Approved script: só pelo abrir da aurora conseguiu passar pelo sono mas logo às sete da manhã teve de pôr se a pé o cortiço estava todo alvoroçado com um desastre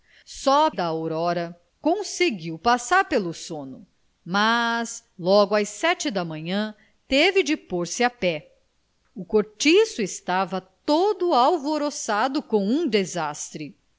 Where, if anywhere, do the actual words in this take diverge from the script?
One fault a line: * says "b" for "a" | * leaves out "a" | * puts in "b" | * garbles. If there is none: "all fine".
* leaves out "pelo abrir"